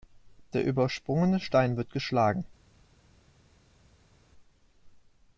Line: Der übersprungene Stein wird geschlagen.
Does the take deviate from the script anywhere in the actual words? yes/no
no